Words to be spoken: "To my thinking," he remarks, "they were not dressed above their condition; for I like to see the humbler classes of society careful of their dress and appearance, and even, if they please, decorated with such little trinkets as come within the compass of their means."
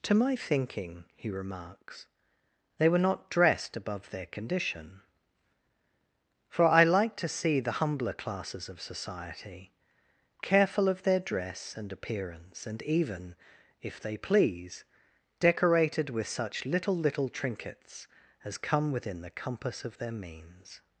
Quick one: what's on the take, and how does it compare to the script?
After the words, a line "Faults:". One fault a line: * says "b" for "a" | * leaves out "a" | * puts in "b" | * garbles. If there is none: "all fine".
"To my thinking," he remarks, "they were not dressed above their condition; for I like to see the humbler classes of society careful of their dress and appearance, and even, if they please, decorated with such little little trinkets as come within the compass of their means."
Faults:
* puts in "little"